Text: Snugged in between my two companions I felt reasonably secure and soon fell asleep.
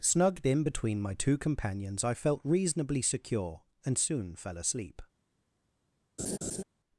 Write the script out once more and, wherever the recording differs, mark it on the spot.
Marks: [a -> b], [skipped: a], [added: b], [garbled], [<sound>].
Snugged in between my two companions I felt reasonably secure and soon fell asleep. [laugh]